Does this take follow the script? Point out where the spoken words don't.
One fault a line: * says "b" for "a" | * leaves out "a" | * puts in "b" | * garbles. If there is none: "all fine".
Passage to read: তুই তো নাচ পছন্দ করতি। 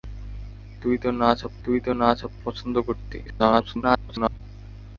* puts in "তুই তো নাচ"
* garbles